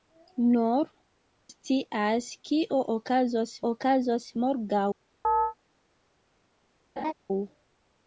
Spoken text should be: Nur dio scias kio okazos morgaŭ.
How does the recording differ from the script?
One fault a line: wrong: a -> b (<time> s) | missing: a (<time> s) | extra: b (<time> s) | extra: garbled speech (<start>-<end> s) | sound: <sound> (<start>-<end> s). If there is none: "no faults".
missing: dio (0.9 s)
extra: okazos (3.7 s)
sound: chirp (5.2-5.5 s)
sound: laugh (7.0-7.1 s)